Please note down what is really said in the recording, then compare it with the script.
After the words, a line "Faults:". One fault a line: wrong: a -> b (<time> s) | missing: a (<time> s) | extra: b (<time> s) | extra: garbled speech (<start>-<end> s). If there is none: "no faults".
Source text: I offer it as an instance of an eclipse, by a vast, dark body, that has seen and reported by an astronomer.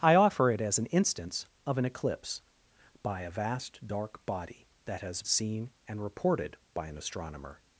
I offer it as an instance of an eclipse, by a vast, dark body, that has seen and reported by an astronomer.
Faults:
no faults